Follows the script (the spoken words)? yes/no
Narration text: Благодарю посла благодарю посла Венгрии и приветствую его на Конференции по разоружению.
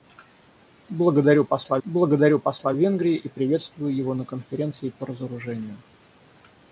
yes